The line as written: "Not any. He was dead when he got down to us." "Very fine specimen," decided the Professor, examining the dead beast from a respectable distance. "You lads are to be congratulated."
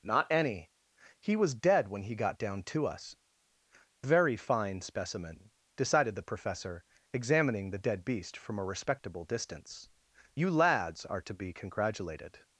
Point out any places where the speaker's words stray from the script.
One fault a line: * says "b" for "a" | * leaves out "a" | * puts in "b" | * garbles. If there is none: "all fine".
all fine